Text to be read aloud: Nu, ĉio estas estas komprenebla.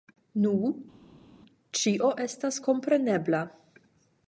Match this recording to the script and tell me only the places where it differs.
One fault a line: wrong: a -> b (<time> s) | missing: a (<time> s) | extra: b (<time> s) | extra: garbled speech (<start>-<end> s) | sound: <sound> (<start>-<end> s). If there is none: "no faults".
missing: estas (2.6 s)